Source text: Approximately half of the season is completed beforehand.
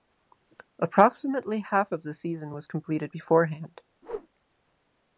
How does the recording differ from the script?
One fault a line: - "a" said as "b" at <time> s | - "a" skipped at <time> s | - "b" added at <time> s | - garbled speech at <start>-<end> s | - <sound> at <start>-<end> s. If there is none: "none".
- "is" said as "was" at 2.5 s
- whoosh at 4.0-4.3 s